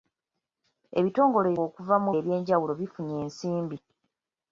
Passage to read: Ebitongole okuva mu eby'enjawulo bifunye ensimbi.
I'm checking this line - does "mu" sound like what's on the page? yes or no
yes